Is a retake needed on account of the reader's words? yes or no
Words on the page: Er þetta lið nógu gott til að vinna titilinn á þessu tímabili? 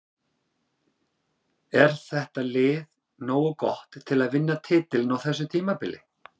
no